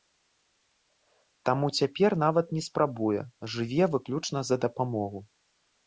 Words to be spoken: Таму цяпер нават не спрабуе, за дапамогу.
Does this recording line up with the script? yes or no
no